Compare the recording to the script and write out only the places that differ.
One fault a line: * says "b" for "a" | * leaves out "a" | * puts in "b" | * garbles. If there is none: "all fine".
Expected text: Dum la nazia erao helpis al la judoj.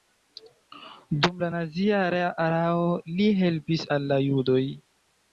* puts in "li"